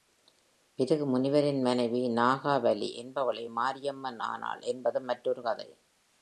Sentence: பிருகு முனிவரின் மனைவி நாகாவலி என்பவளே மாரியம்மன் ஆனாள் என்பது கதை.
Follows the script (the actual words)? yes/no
no